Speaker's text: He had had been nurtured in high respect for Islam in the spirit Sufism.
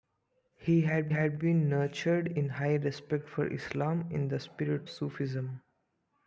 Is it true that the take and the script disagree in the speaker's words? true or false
false